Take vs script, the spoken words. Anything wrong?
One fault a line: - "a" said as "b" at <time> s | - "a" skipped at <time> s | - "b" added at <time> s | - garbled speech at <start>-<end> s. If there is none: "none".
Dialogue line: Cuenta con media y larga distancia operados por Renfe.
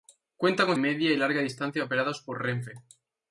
none